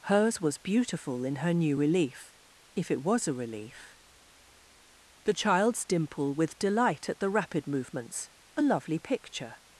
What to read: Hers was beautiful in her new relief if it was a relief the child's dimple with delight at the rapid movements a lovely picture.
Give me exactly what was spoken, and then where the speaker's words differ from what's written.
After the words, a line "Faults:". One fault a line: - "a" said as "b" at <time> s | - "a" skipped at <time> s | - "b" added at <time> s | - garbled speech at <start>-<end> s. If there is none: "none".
Hers was beautiful in her new relief if it was a relief the child's dimple with delight at the rapid movements a lovely picture.
Faults:
none